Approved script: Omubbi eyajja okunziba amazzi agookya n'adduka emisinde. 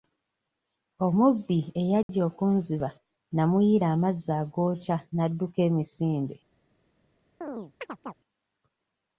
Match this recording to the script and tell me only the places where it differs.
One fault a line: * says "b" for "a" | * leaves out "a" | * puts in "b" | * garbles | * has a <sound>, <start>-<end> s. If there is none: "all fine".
* has a dropout, 2.0-2.1 s
* puts in "namuyiira"
* has a chirp, 7.4-8.1 s